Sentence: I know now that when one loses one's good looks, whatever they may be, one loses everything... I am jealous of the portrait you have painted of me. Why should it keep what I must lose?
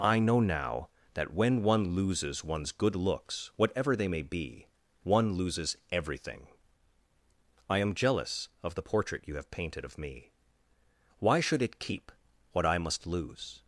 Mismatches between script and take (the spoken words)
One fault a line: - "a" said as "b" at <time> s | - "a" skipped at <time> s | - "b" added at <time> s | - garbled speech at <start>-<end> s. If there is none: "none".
none